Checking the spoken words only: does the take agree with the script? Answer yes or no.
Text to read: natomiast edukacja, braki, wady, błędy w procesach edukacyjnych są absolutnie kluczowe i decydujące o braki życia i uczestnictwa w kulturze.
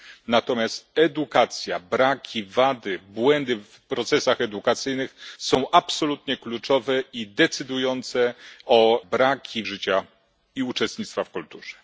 yes